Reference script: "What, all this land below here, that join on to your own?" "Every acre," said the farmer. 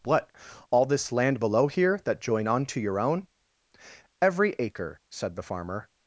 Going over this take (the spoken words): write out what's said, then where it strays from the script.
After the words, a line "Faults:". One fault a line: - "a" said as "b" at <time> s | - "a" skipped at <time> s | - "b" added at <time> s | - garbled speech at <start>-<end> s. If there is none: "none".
"What, all this land below here, that join on to your own?" "Every acre," said the farmer.
Faults:
none